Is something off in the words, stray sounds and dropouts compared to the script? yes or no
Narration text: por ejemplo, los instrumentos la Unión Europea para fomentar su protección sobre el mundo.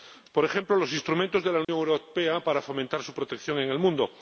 yes